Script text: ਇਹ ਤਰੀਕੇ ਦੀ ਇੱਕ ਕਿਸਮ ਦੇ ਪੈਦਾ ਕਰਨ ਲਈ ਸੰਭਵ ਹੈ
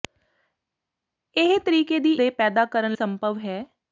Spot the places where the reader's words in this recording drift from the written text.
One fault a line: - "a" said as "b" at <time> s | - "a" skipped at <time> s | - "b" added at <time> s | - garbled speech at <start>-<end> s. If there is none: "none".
- "ਇੱਕ ਕਿਸਮ" skipped at 2.1 s
- "ਲਈ" skipped at 3.0 s